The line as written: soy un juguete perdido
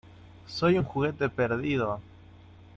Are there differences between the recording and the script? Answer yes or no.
no